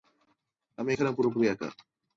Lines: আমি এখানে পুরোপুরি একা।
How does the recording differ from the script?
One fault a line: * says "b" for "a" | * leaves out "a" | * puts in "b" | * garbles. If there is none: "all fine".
all fine